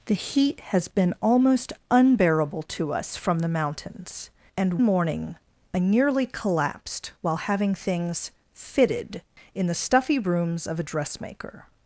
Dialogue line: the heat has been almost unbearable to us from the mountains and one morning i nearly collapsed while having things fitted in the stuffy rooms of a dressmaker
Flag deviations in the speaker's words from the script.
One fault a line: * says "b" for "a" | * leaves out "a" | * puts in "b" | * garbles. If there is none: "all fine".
* leaves out "one"